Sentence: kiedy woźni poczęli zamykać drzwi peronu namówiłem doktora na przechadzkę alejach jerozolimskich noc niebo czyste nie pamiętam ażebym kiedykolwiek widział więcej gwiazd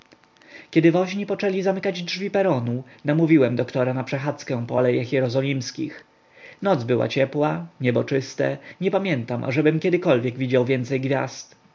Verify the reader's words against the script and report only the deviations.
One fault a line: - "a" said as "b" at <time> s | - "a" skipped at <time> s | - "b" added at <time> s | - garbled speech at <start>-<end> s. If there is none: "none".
- "po" added at 4.7 s
- "była ciepła" added at 6.8 s